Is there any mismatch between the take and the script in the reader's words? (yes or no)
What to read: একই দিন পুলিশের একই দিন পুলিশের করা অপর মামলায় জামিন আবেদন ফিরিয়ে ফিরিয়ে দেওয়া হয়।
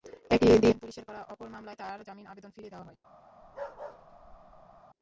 yes